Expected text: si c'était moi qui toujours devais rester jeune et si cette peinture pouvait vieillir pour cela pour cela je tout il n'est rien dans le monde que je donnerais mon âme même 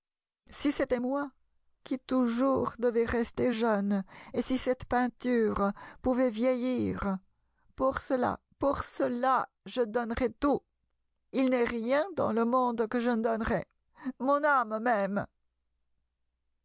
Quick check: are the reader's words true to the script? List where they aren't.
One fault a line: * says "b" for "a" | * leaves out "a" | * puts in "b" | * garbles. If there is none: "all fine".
* puts in "donnerais"
* puts in "ne"